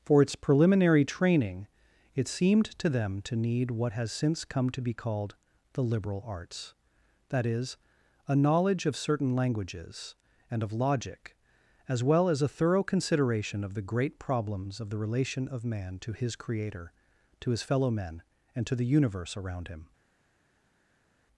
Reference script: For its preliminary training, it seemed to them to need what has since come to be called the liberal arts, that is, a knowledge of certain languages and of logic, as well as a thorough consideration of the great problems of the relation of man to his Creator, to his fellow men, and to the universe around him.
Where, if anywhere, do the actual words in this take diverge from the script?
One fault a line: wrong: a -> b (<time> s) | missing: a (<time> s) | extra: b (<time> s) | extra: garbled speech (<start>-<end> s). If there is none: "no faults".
no faults